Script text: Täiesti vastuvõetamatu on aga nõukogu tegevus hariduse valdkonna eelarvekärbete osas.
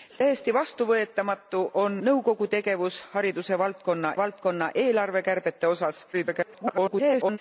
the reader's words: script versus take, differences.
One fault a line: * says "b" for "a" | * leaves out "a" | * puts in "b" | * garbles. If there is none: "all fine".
* leaves out "aga"
* puts in "valdkonna"
* garbles